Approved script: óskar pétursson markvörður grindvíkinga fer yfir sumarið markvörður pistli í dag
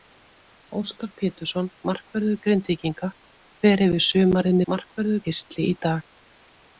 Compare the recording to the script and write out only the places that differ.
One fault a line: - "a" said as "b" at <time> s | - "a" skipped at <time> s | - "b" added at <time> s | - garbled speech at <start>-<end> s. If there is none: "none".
none